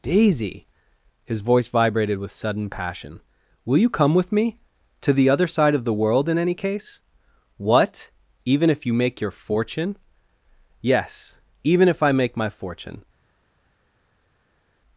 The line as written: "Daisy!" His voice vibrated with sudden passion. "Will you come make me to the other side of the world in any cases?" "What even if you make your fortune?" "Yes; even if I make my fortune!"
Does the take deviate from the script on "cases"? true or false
true